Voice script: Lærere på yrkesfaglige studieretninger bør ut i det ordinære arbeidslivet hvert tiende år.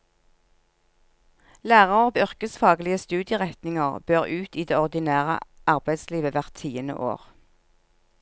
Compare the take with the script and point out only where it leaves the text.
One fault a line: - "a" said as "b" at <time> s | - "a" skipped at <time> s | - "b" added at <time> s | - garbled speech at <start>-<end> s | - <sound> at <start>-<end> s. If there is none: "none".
none